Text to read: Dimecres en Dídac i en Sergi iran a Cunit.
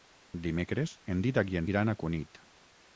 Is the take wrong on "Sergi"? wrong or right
wrong